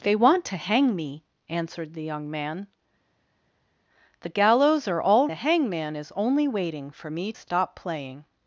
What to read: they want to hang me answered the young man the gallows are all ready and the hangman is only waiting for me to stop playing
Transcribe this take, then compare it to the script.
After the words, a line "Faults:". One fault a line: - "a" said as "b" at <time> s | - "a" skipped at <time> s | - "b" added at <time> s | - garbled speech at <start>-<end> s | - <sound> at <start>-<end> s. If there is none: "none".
they want to hang me answered the young man the gallows are all the hangman is only waiting for me stop playing
Faults:
- "ready and" skipped at 5.3 s
- "to" skipped at 7.3 s